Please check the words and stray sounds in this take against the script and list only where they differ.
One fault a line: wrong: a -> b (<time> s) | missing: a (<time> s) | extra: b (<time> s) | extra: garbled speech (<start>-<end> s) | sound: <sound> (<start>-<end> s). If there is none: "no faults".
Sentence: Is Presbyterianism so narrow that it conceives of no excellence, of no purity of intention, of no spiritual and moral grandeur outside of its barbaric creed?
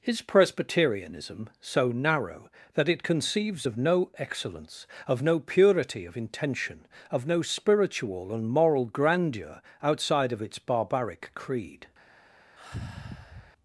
sound: sigh (12.6-13.5 s)